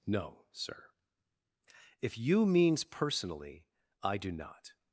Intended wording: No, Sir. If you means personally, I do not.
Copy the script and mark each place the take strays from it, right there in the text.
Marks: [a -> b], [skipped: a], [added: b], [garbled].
No, Sir. If you means personally, I do not.